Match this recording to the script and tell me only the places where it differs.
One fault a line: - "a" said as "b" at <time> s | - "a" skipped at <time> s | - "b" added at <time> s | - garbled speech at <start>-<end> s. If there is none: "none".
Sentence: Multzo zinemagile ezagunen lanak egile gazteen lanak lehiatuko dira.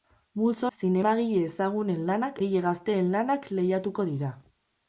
none